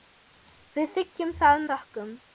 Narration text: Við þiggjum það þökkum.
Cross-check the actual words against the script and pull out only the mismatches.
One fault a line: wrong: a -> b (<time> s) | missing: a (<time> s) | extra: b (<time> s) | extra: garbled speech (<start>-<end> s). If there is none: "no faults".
no faults